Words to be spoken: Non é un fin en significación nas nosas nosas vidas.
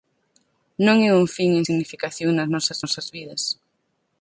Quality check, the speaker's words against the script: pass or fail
pass